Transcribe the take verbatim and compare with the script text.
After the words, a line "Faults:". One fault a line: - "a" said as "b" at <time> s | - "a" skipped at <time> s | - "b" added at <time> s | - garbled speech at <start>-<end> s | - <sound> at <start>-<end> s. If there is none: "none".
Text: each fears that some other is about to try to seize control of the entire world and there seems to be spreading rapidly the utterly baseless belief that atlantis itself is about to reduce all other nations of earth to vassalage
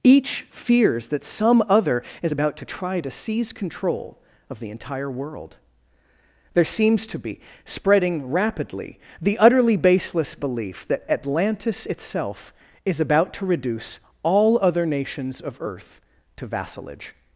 each fears that some other is about to try to seize control of the entire world there seems to be spreading rapidly the utterly baseless belief that atlantis itself is about to reduce all other nations of earth to vassalage
Faults:
- "and" skipped at 5.6 s